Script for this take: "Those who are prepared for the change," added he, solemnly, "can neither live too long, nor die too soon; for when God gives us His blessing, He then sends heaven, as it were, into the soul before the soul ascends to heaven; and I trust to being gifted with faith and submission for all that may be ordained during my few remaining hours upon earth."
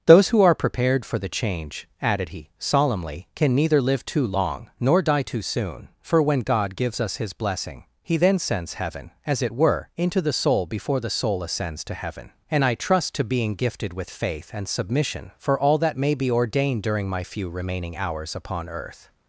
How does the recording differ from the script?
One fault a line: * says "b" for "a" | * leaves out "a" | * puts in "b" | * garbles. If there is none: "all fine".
all fine